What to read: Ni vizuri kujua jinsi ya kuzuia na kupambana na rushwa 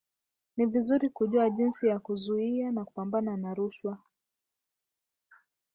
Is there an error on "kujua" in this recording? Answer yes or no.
no